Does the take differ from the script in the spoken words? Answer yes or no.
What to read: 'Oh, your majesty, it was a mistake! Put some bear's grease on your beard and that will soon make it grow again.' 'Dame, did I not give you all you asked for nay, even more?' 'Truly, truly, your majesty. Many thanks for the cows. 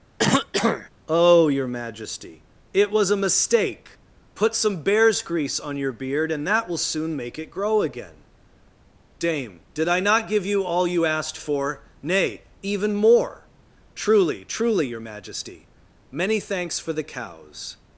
no